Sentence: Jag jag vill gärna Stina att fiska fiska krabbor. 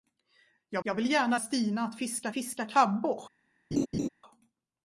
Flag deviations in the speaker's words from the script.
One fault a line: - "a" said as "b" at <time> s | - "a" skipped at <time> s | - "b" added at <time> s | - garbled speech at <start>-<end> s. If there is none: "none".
none